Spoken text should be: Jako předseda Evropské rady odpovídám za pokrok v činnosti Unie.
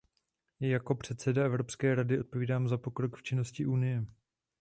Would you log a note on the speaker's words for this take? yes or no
no